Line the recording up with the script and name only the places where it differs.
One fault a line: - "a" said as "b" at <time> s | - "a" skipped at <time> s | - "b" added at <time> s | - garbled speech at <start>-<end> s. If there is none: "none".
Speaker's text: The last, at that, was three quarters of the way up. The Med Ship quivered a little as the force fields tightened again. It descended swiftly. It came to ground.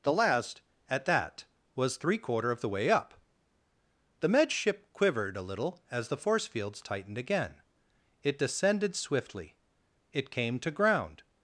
- "quarters" said as "quarter" at 2.2 s